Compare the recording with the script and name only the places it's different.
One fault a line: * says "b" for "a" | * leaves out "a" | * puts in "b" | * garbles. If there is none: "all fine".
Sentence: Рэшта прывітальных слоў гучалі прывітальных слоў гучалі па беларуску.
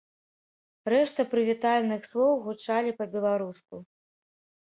* leaves out "прывітальных слоў гучалі"